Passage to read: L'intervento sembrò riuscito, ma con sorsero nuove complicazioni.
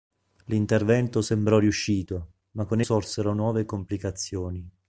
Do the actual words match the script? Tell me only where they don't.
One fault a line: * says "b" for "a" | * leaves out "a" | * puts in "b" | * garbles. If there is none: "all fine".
all fine